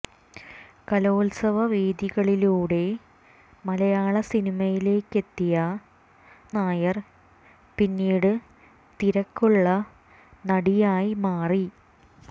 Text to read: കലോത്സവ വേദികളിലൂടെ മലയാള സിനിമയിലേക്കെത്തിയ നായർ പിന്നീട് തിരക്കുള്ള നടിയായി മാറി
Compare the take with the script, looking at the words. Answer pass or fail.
pass